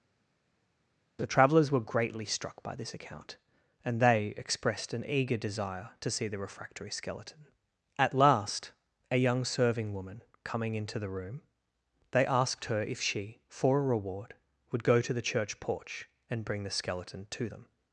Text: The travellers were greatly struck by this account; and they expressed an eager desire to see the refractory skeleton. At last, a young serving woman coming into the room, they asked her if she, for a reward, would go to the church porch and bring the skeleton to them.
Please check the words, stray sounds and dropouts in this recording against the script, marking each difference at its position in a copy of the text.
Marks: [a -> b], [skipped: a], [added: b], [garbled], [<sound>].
The travellers were greatly struck by this account; and they expressed an eager desire to see the refractory skeleton. At last, a young serving woman coming into the room, they asked her if she, for a reward, would go to the church porch and bring the skeleton to them.